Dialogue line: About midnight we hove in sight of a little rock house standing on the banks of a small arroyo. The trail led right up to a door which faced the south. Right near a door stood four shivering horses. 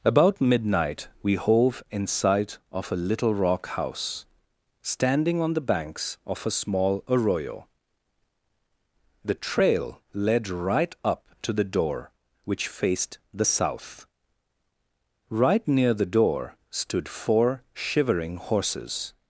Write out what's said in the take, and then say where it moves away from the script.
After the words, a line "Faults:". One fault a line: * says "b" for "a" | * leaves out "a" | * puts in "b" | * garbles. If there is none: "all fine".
About midnight we hove in sight of a little rock house standing on the banks of a small arroyo. The trail led right up to the door which faced the south. Right near the door stood four shivering horses.
Faults:
* says "the" for "a"
* says "the" for "a"